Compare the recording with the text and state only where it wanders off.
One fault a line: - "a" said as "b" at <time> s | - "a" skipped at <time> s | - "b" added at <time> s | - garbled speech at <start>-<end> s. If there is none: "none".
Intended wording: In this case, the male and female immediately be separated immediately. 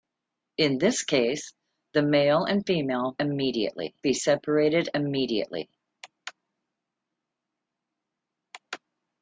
none